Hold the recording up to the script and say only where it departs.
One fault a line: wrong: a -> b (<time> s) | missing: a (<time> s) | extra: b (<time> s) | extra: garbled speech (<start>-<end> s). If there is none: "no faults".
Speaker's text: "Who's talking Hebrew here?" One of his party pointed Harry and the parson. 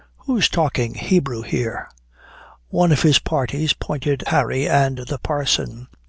no faults